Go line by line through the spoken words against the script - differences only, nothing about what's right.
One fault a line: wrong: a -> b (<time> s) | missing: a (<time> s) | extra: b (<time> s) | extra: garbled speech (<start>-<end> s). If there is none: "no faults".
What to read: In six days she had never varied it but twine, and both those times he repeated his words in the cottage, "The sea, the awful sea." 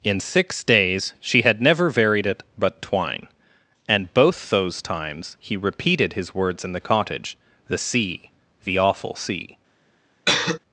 no faults